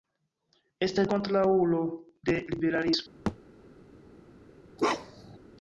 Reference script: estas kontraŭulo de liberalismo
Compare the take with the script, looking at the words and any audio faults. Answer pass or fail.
fail